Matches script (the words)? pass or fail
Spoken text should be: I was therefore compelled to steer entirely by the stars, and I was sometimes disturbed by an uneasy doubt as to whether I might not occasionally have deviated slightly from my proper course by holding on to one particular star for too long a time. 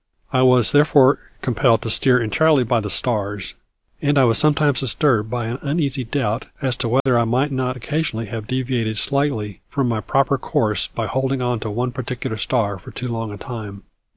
pass